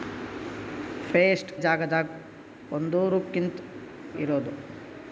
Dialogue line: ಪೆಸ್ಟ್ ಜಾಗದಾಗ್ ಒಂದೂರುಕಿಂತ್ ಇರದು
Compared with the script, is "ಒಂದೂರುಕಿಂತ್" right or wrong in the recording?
right